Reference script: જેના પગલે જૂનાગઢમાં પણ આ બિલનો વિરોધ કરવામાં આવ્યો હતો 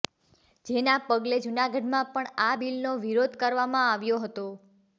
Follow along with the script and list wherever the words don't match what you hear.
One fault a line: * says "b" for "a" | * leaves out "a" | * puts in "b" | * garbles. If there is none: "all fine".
all fine